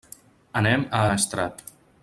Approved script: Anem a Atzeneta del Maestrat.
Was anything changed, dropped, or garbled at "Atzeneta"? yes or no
yes